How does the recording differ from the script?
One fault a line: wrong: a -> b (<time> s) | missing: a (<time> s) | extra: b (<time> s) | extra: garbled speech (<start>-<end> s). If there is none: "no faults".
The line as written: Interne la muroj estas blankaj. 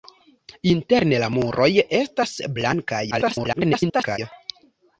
extra: garbled speech (3.1-4.2 s)